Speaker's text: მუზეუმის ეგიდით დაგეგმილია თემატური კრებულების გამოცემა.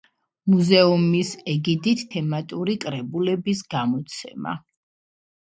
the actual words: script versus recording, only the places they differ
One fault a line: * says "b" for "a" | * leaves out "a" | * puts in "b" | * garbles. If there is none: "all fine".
* leaves out "დაგეგმილია"